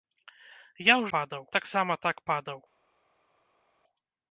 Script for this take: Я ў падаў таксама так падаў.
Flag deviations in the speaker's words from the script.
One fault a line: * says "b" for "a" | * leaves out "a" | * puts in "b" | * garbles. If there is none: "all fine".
all fine